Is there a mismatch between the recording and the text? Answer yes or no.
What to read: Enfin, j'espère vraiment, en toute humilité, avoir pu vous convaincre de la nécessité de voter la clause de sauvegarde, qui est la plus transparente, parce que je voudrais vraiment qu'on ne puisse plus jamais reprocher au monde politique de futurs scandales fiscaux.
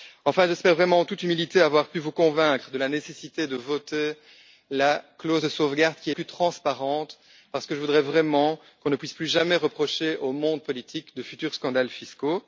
yes